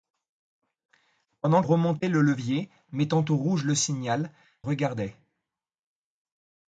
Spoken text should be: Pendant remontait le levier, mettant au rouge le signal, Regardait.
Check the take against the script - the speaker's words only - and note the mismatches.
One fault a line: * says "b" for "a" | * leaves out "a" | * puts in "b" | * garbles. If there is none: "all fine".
all fine